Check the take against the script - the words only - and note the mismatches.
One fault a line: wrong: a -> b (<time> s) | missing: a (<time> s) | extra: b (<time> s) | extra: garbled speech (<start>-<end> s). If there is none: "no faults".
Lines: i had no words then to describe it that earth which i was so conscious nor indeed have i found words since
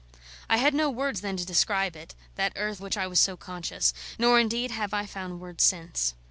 no faults